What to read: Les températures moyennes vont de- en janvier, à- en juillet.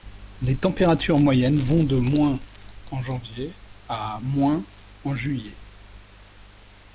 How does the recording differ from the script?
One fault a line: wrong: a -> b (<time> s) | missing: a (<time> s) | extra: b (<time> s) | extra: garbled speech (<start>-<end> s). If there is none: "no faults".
no faults